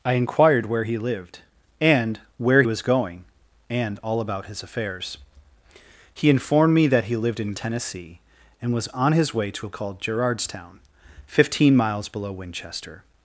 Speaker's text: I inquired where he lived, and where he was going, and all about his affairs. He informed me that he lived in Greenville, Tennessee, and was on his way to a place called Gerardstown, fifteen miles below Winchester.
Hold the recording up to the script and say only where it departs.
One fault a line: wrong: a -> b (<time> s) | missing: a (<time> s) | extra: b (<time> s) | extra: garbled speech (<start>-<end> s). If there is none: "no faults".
missing: he (2.6 s)
missing: Greenville (7.5 s)
missing: place (9.8 s)